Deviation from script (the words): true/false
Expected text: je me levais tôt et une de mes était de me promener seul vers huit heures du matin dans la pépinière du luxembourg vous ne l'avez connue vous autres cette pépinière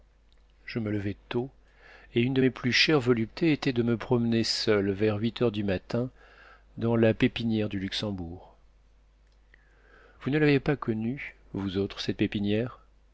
true